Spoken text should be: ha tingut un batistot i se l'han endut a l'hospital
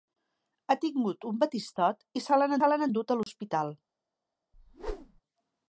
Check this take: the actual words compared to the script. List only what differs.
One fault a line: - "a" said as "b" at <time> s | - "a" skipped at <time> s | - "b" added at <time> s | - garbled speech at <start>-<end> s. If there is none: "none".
- "se l'han" added at 2.6 s